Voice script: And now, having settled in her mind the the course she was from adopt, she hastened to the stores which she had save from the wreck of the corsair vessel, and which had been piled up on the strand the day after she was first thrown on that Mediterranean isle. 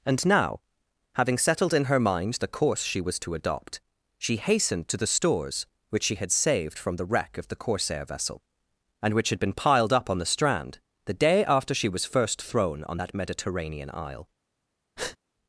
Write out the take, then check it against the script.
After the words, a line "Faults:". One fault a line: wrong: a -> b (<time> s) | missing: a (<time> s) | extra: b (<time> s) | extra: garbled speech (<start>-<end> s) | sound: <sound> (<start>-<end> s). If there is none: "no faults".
And now, having settled in her mind the course she was to adopt, she hastened to the stores which she had saved from the wreck of the corsair vessel, and which had been piled up on the strand the day after she was first thrown on that Mediterranean isle.
Faults:
missing: the (2.5 s)
wrong: from -> to (3.2 s)
wrong: save -> saved (6.3 s)
sound: breath (15.0-15.2 s)